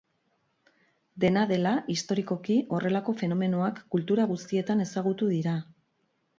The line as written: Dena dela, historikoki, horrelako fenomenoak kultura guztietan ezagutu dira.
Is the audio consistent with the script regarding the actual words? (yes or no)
yes